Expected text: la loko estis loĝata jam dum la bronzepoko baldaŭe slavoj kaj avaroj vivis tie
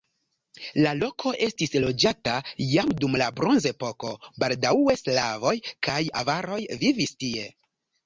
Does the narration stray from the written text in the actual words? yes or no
no